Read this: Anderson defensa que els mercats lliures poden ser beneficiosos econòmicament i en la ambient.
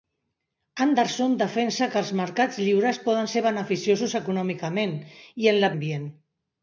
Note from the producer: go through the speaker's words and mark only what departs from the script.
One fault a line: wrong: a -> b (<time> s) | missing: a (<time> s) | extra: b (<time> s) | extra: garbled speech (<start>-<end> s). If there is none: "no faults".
no faults